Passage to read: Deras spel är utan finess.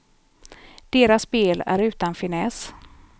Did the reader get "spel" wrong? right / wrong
right